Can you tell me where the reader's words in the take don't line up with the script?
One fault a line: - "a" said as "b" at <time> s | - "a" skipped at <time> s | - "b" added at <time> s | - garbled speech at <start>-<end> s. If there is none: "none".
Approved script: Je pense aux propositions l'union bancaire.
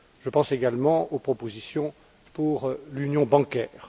- "également" added at 0.5 s
- "pour" added at 2.3 s